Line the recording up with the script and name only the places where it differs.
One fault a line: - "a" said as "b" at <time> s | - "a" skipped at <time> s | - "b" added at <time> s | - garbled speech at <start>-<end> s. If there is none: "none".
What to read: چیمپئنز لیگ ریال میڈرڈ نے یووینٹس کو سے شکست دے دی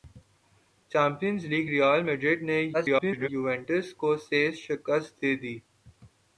- garbled speech at 2.7-3.3 s